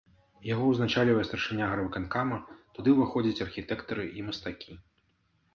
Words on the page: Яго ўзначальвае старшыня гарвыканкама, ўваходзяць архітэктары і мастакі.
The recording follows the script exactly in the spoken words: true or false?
false